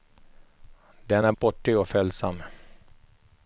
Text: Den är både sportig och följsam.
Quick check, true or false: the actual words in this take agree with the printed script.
false